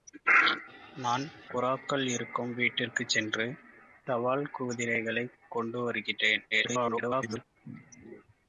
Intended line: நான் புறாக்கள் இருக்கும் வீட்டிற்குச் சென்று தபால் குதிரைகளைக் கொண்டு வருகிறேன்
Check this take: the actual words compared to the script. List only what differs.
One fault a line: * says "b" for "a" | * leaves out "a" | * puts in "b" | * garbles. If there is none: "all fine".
* garbles